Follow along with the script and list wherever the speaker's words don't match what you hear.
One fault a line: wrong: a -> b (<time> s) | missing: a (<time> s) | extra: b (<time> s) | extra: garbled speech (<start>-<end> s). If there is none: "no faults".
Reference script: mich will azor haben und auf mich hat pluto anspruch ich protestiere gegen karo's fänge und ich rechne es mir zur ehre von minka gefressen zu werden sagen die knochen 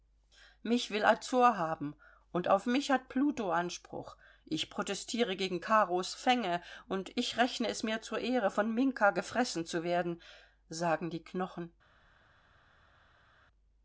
no faults